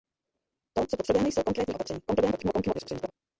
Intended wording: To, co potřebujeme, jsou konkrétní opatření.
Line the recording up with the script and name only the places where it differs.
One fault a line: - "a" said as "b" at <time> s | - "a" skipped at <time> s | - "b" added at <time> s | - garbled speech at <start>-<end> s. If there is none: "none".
- garbled speech at 2.1-3.1 s